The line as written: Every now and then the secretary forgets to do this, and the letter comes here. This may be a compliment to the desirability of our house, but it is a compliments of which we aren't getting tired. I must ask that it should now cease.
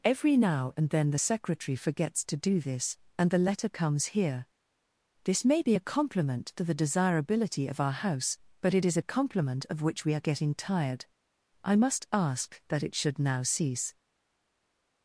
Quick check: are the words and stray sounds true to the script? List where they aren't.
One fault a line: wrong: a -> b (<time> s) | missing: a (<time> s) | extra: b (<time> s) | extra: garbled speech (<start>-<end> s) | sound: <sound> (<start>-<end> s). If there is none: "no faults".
wrong: compliments -> compliment (9.1 s)
wrong: aren't -> are (10.1 s)